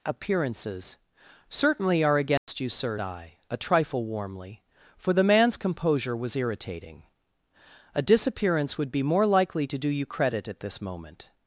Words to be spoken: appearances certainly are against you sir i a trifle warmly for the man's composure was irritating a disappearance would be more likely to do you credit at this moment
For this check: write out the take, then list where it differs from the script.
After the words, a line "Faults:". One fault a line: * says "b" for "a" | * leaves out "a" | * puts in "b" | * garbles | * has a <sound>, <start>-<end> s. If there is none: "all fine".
appearances certainly are against you sir i a trifle warmly for the man's composure was irritating a disappearance would be more likely to do you credit at this moment
Faults:
* has a dropout, 2.4-2.5 s